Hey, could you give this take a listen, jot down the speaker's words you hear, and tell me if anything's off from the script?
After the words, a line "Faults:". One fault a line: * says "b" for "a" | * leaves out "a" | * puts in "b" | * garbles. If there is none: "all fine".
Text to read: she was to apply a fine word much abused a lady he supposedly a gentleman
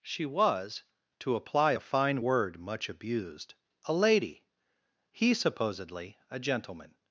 she was to apply a fine word much abused a lady he supposedly a gentleman
Faults:
all fine